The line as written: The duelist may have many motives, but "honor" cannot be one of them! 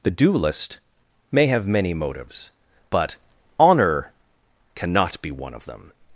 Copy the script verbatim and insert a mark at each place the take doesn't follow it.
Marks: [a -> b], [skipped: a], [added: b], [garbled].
The duelist may have many motives, but "honor" cannot be one of them!